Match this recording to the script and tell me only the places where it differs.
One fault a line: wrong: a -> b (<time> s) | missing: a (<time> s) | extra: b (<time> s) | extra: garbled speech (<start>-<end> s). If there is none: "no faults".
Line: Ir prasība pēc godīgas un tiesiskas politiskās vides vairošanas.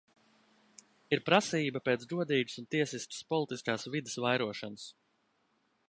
no faults